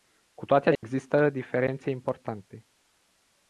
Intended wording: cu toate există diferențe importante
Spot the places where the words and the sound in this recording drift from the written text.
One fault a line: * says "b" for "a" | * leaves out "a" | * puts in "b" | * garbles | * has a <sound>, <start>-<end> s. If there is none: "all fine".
* has a dropout, 0.8-0.8 s